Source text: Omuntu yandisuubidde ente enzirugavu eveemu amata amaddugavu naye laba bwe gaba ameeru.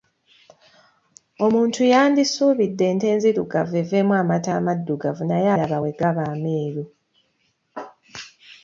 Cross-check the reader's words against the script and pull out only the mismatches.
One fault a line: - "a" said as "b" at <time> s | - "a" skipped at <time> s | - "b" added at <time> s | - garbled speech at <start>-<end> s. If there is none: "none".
none